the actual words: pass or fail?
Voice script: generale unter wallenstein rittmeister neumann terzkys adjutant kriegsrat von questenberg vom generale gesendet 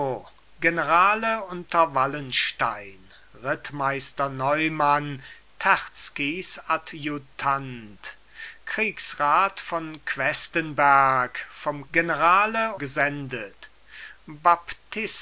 pass